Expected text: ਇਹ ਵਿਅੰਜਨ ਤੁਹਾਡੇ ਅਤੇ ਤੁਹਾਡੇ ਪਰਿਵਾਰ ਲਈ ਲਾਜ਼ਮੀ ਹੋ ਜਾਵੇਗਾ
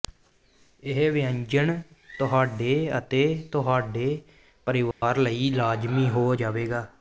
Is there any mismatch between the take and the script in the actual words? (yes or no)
no